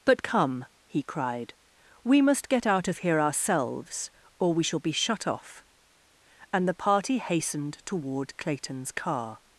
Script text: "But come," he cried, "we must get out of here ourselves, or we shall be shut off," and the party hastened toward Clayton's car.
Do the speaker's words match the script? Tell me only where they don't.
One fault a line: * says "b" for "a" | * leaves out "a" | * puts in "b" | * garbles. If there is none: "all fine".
all fine